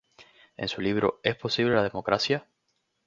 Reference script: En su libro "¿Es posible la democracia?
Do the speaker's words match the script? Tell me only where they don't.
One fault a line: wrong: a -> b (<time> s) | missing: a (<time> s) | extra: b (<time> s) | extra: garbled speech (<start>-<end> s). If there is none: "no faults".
no faults